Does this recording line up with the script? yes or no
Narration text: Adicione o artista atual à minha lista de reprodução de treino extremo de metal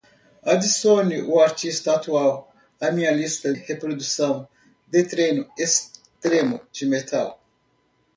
no